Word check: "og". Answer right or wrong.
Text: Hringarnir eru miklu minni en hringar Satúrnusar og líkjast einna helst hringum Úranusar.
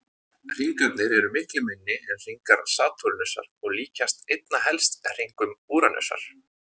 right